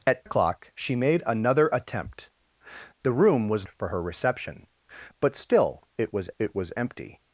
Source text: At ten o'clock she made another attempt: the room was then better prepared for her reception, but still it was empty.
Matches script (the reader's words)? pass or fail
fail